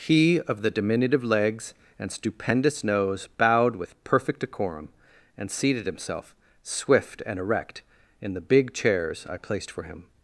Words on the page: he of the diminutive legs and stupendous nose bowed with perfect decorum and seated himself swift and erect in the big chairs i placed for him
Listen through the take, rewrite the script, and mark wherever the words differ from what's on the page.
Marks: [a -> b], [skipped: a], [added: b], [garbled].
he of the diminutive legs and stupendous nose bowed with perfect decorum and seated himself swift and erect in the big chairs i placed for him